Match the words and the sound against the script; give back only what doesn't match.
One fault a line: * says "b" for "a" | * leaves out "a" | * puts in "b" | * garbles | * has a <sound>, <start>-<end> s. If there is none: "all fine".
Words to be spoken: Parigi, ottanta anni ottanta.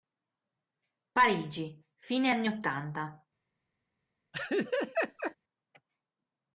* says "fine" for "ottanta"
* has a laugh, 4.3-5.4 s